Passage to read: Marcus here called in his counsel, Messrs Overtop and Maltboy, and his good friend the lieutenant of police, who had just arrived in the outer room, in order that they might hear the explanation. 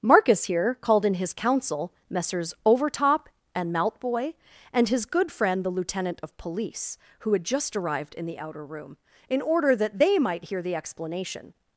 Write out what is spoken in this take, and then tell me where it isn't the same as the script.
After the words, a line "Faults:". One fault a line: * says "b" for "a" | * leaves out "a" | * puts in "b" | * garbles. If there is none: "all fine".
Marcus here called in his counsel, Messrs Overtop and Maltboy, and his good friend the lieutenant of police, who had just arrived in the outer room, in order that they might hear the explanation.
Faults:
all fine